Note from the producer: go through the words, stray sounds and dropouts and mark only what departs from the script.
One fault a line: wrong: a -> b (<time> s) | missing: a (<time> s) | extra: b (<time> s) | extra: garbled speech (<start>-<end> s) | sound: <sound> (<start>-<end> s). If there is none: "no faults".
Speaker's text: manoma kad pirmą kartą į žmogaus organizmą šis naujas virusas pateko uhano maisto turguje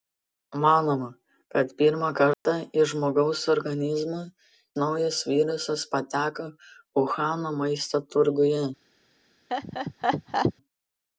sound: dropout (2.3-2.5 s)
missing: šis (4.2 s)
sound: laugh (9.5-10.5 s)